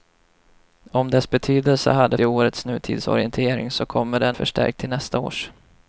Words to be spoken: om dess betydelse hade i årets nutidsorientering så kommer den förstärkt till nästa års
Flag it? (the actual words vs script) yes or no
no